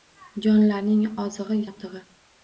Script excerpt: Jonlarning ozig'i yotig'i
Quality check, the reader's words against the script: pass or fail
pass